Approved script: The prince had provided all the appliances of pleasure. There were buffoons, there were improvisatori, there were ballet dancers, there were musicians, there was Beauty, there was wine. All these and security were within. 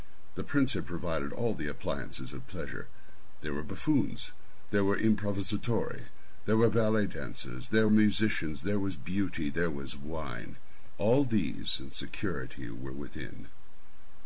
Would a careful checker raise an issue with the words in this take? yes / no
yes